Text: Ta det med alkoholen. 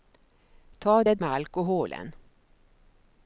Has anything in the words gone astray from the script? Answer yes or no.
no